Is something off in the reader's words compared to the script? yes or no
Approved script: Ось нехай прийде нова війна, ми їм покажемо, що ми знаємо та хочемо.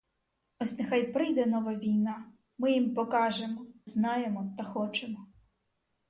yes